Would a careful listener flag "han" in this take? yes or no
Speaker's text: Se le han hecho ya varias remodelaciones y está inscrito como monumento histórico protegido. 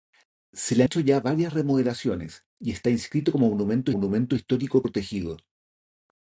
yes